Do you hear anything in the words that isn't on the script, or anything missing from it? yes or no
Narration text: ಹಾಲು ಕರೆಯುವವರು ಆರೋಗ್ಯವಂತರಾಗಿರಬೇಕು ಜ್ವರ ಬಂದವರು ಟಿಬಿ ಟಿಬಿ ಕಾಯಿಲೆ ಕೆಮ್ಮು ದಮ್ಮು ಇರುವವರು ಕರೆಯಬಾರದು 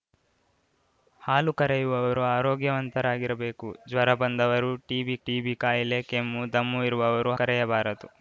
no